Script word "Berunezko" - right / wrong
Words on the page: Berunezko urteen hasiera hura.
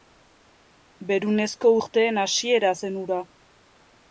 right